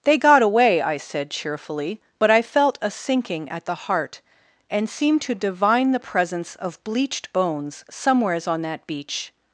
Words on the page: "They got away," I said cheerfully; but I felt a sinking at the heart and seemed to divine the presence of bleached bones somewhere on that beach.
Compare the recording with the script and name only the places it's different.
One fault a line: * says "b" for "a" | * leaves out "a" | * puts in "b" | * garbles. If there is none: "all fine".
* says "somewheres" for "somewhere"